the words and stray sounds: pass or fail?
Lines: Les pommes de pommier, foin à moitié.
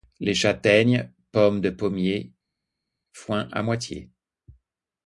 fail